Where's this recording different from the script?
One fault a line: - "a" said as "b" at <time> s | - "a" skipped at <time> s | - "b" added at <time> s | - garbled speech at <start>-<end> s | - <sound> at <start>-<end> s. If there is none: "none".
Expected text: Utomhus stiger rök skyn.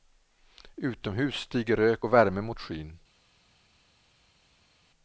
- "och värme mot" added at 2.0 s